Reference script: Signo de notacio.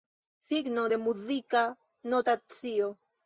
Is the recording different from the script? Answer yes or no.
yes